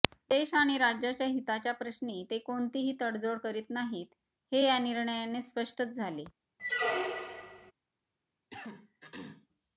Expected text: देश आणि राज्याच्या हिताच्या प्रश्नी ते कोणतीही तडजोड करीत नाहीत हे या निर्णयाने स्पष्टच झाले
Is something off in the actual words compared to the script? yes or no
no